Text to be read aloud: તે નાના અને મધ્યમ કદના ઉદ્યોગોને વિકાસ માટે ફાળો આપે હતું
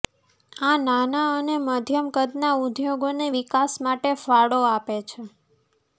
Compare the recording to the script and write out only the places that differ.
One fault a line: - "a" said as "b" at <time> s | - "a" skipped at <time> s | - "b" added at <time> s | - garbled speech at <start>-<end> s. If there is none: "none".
- "તે" said as "આ" at 0.6 s
- "હતું" said as "છે" at 5.1 s